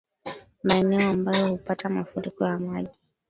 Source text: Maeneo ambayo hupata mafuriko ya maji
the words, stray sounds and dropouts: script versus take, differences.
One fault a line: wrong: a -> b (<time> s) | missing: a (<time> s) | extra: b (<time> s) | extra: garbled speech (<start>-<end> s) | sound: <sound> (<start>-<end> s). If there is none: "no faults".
no faults